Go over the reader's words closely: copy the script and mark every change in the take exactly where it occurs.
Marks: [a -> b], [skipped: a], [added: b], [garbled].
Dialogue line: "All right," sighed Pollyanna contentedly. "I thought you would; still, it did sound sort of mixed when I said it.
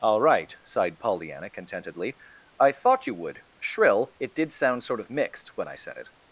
"All right," sighed Pollyanna contentedly. "I thought you would; [still, -> shrill] it did sound sort of mixed when I said it.